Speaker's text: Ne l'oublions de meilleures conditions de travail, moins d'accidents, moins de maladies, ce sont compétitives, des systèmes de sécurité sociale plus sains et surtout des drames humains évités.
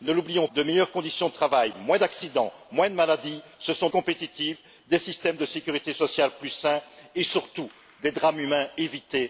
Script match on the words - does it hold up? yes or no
yes